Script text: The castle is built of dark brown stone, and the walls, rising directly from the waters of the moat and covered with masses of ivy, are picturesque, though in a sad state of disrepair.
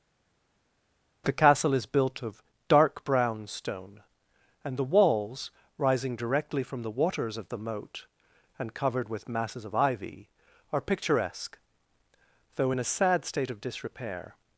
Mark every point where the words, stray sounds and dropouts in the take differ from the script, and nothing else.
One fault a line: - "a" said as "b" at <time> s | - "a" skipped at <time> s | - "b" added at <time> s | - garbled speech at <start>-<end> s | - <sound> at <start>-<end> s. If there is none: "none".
none